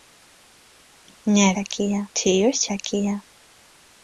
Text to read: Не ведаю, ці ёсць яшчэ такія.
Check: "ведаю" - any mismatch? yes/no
yes